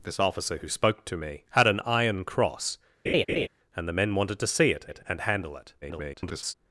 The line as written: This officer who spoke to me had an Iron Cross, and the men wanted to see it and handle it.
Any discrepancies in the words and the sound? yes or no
yes